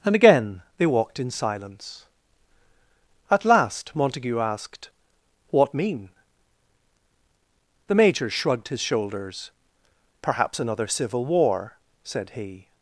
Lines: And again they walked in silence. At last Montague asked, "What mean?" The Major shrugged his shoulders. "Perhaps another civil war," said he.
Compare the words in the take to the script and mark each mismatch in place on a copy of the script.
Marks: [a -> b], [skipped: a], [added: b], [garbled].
And again they walked in silence. At last Montague asked, "What mean?" The Major shrugged his shoulders. "Perhaps another civil war," said he.